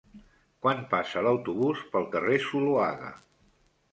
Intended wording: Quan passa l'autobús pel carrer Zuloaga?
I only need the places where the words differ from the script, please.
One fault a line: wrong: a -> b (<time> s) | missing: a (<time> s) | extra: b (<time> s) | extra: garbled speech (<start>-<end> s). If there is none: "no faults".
no faults